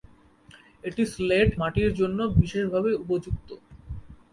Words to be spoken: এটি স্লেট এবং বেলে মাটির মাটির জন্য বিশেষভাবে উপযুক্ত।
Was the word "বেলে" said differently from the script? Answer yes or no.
yes